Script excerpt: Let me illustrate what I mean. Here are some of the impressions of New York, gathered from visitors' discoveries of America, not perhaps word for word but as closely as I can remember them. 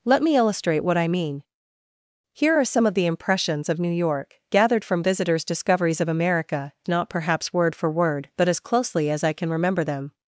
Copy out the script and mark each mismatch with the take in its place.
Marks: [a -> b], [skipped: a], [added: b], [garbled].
Let me illustrate what I mean. Here are some of the impressions of New York, gathered from visitors' discoveries of America, not perhaps word for word but as closely as I can remember them.